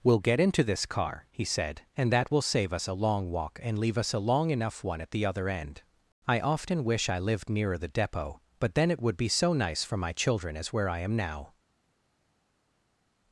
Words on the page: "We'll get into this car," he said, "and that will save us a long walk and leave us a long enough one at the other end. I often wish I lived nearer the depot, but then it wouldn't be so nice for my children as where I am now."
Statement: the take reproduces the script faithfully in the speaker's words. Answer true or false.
false